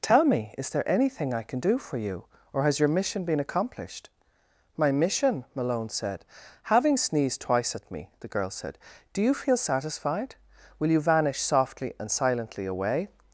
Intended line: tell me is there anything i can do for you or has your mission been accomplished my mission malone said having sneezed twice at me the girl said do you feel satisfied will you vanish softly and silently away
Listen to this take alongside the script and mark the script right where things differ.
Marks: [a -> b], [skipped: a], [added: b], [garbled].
tell me is there anything i can do for you or has your mission been accomplished my mission malone said having sneezed twice at me the girl said do you feel satisfied will you vanish softly and silently away